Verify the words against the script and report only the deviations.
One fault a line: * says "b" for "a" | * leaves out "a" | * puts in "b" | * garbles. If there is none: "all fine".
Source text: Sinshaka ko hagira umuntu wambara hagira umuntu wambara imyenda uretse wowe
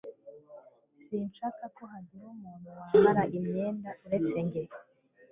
* leaves out "hagira umuntu wambara"
* says "njye" for "wowe"